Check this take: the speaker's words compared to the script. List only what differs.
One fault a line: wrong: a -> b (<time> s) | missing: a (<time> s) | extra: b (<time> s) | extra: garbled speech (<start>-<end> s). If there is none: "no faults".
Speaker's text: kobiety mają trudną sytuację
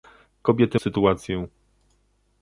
missing: mają trudną (0.8 s)